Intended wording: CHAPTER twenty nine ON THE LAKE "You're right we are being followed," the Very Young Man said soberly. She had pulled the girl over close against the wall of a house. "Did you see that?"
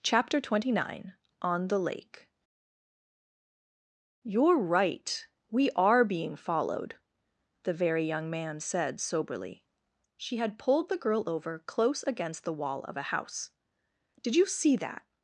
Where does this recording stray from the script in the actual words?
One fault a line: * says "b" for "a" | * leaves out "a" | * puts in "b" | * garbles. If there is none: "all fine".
all fine